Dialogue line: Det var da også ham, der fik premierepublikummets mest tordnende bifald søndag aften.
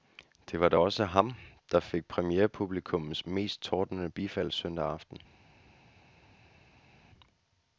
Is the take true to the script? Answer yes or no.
yes